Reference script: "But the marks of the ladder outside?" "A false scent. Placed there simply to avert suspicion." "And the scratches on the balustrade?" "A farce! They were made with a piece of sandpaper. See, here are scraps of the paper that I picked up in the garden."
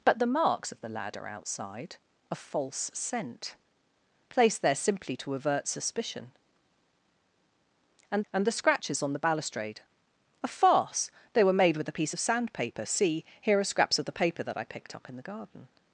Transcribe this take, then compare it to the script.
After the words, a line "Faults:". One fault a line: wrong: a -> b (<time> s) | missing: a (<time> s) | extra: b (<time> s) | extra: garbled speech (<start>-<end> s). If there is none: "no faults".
"But the marks of the ladder outside?" "A false scent. Placed there simply to avert suspicion." "And and the scratches on the balustrade?" "A farce! They were made with a piece of sandpaper. See, here are scraps of the paper that I picked up in the garden."
Faults:
extra: and (8.3 s)